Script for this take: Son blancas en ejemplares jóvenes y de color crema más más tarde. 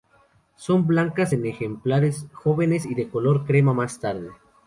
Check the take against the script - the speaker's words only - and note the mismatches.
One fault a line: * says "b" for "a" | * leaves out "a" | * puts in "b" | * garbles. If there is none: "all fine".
* leaves out "más"